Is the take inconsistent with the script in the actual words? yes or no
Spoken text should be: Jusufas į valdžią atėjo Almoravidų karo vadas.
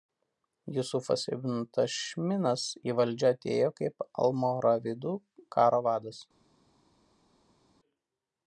yes